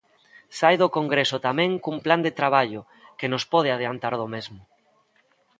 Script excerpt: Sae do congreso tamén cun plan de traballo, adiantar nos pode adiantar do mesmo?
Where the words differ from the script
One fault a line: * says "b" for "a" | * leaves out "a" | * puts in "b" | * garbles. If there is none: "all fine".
* says "que" for "adiantar"